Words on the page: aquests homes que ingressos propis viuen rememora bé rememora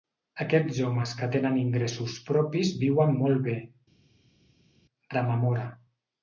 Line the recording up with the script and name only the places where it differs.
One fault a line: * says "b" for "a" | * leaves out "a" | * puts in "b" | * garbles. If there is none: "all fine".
* puts in "tenen"
* says "molt" for "rememora"